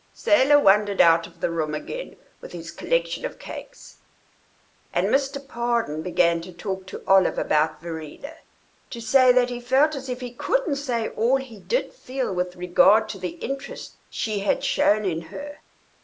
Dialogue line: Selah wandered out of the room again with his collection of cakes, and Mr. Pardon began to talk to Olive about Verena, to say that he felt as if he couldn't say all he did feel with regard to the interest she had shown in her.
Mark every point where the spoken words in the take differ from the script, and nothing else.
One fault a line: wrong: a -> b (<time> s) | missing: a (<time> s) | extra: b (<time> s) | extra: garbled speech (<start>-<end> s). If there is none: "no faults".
no faults